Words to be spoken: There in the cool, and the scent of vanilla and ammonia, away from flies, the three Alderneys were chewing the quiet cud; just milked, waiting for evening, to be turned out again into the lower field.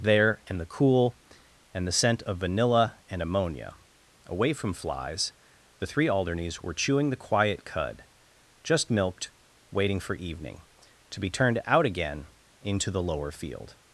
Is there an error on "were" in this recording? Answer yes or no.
no